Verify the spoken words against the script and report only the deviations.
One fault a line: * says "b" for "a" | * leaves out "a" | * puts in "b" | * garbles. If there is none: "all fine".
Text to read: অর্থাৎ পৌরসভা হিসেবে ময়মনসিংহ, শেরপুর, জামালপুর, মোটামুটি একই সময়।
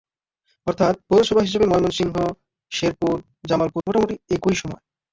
all fine